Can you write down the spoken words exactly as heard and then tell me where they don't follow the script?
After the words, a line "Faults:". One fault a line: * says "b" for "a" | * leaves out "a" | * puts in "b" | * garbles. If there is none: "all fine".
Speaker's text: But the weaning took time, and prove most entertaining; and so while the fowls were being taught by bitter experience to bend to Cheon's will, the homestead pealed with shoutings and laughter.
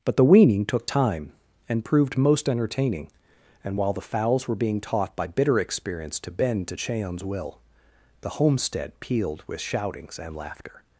But the weaning took time, and proved most entertaining; and while the fowls were being taught by bitter experience to bend to Cheon's will, the homestead pealed with shoutings and laughter.
Faults:
* says "proved" for "prove"
* leaves out "so"